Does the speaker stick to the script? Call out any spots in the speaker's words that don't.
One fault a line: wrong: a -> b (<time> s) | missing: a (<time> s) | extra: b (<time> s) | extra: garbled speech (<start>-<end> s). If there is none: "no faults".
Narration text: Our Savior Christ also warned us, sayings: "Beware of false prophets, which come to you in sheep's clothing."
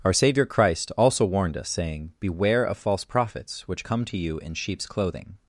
wrong: sayings -> saying (1.7 s)